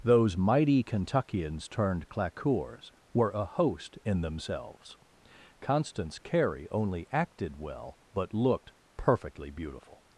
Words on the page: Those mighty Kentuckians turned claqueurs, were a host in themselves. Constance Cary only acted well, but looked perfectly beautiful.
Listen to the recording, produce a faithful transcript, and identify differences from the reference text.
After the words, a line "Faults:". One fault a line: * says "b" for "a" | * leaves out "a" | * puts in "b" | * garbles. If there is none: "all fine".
Those mighty Kentuckians turned claqueurs, were a host in themselves. Constance Cary only acted well, but looked perfectly beautiful.
Faults:
all fine